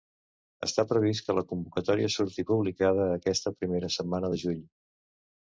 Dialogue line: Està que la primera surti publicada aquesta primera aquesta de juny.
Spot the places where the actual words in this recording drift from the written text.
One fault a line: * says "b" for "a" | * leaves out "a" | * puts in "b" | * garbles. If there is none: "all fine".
* puts in "previst"
* says "convocatòria" for "primera"
* says "setmana" for "aquesta"